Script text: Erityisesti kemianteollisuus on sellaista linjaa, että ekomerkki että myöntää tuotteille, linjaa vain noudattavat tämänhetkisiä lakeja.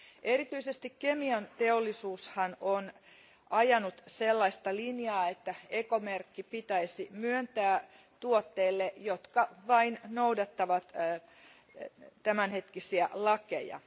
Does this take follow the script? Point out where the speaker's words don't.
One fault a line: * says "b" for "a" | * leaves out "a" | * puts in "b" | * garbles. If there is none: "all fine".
* puts in "ajanut"
* says "pitäisi" for "että"
* says "jotka" for "linjaa"